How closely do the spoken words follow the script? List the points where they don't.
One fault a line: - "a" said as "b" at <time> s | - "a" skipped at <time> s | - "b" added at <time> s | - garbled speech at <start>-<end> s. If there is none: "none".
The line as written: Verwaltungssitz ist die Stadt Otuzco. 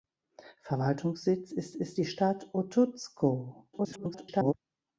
- "ist" added at 1.7 s
- garbled speech at 3.7-4.5 s